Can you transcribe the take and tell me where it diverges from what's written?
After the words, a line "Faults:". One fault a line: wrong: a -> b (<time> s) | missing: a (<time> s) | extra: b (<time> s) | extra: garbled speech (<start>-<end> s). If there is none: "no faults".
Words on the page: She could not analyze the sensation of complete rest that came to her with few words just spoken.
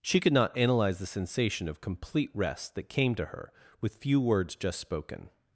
She could not analyze the sensation of complete rest that came to her with few words just spoken.
Faults:
no faults